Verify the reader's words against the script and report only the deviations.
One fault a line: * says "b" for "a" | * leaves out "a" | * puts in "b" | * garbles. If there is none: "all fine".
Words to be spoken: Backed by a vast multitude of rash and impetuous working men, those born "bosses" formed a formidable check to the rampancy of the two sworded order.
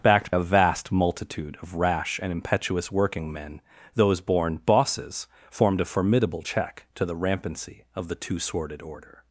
* leaves out "by"